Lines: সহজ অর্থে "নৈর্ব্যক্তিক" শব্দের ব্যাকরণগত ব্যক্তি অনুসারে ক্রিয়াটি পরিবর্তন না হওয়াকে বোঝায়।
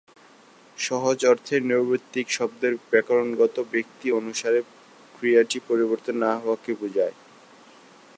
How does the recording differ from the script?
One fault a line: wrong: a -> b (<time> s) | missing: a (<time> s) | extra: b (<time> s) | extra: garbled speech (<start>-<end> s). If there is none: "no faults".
no faults